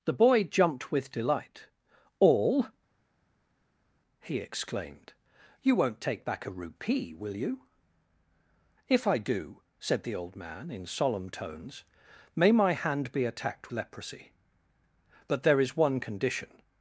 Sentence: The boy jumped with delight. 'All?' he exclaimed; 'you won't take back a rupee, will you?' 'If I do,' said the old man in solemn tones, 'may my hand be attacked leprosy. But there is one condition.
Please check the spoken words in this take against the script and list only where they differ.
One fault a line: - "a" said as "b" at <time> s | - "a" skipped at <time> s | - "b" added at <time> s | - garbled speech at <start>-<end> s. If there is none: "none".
none